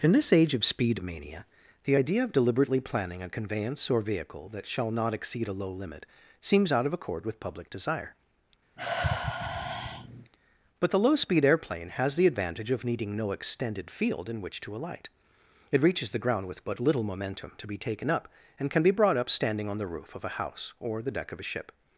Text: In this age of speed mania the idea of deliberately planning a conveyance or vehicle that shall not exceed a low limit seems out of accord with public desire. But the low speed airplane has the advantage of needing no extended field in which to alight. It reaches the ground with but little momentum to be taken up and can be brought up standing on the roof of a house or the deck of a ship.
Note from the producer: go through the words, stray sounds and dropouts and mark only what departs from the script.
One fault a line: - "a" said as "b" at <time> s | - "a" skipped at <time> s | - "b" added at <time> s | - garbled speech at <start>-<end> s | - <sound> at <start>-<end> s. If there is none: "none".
- sigh at 8.8-10.3 s